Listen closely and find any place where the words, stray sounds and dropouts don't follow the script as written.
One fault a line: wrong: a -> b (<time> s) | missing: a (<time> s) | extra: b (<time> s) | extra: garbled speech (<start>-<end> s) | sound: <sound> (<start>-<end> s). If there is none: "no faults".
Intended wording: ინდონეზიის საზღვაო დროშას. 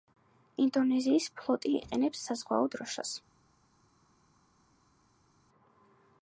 extra: ფლოტი იყენებს (1.4 s)